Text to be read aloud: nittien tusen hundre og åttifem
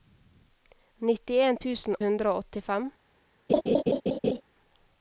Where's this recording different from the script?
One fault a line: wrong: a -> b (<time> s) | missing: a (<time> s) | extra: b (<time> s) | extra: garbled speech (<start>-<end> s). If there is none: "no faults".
no faults